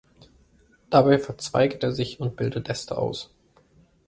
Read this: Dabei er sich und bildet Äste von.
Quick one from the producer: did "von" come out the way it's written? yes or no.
no